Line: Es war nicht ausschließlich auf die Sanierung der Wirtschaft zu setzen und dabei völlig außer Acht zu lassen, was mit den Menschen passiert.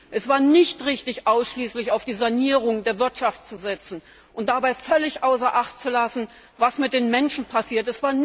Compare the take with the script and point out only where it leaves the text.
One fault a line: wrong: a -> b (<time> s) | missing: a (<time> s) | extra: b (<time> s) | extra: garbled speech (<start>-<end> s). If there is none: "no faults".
extra: richtig (0.8 s)